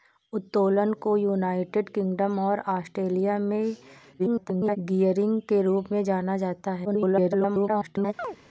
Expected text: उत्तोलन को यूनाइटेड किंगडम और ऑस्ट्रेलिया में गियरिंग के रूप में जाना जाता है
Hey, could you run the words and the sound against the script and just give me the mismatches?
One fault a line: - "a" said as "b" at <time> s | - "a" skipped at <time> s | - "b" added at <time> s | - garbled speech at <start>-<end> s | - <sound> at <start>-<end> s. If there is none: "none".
- garbled speech at 4.2-4.8 s
- garbled speech at 6.8-8.1 s
- chirp at 8.2-8.4 s